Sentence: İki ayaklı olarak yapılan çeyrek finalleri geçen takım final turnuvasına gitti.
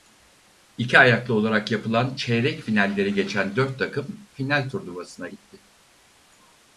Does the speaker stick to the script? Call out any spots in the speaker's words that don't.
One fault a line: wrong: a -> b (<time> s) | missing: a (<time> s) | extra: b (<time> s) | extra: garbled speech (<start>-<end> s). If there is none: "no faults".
extra: dört (3.6 s)